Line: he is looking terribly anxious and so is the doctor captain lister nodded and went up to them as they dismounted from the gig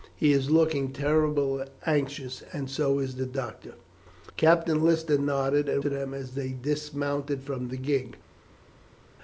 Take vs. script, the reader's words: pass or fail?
fail